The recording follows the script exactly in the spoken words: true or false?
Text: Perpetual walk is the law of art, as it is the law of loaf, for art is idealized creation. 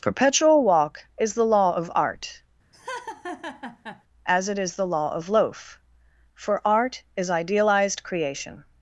true